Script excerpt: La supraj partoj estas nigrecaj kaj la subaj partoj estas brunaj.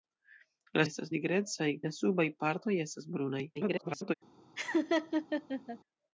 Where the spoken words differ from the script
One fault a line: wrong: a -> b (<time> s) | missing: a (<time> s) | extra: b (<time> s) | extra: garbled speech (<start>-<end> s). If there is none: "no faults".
missing: supraj partoj (0.8 s)
missing: kaj (1.7 s)
extra: garbled speech (3.5-4.1 s)